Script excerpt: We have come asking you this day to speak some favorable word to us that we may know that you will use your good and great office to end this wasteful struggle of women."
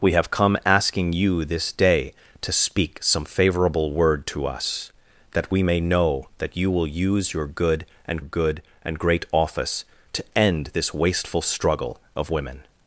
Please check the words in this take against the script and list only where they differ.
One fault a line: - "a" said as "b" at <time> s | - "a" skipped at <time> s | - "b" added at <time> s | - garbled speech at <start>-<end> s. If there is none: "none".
- "good and" added at 8.2 s